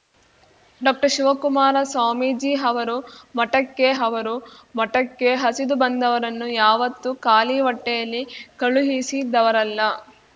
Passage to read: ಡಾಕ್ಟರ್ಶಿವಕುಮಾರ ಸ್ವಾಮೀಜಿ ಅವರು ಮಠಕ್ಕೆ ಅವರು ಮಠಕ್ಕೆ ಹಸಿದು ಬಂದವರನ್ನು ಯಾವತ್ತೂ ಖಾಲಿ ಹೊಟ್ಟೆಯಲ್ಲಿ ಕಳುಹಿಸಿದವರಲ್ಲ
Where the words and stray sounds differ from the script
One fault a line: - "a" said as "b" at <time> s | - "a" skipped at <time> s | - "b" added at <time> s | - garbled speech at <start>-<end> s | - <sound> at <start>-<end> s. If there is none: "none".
none